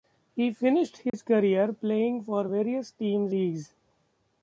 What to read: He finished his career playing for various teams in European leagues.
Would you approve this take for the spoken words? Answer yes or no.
no